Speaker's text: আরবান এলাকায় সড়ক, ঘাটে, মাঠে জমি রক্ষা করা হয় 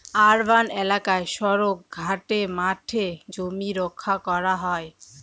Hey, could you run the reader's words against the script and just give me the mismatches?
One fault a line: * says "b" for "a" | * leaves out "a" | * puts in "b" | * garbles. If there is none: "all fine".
all fine